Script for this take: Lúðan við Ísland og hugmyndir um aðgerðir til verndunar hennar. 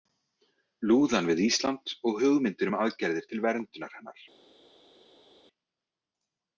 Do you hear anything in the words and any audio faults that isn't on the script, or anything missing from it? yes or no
no